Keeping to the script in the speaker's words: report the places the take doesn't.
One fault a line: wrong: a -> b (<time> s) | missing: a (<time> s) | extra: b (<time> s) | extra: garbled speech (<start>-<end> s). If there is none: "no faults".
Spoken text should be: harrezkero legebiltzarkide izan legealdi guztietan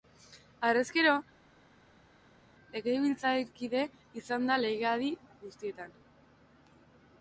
extra: da (4.5 s)